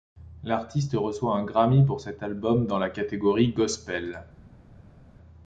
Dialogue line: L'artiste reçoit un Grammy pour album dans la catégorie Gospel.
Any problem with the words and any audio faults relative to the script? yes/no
yes